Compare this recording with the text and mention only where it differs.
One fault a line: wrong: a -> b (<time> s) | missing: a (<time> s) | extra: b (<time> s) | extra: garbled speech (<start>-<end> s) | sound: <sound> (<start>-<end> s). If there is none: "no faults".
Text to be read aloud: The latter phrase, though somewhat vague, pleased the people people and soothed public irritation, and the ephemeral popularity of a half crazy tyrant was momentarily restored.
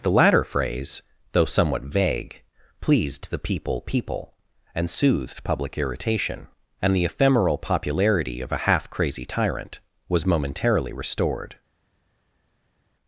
no faults